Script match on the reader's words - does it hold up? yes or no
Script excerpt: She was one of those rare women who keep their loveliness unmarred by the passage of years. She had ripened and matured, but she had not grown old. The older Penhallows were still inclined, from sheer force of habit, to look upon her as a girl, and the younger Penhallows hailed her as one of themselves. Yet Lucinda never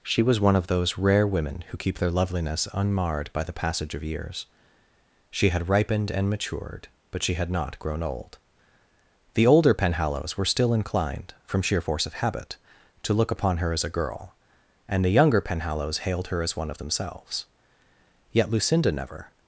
yes